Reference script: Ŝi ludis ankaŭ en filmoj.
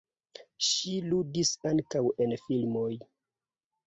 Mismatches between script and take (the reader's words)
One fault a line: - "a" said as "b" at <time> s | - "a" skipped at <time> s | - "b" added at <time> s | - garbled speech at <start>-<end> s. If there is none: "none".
none